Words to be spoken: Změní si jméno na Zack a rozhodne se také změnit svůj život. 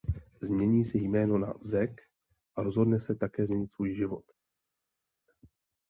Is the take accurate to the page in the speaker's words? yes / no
yes